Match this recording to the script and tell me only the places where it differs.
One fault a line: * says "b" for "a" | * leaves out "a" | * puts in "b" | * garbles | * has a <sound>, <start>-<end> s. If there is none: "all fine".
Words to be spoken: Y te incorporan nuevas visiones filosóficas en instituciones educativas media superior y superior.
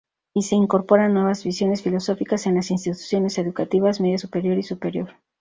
* says "se" for "te"
* puts in "las"